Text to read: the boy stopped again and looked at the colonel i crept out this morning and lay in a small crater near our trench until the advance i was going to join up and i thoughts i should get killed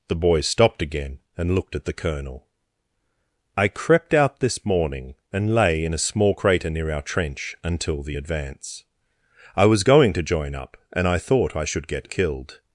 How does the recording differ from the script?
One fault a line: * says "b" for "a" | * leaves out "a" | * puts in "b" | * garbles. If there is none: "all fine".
* says "thought" for "thoughts"